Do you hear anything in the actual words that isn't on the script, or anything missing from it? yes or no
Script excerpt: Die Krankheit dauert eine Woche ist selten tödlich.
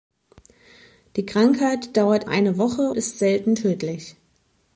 no